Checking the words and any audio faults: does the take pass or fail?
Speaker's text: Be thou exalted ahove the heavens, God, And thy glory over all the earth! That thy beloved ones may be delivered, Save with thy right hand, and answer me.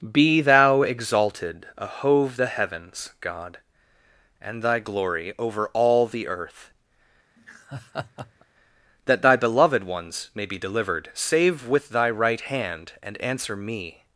fail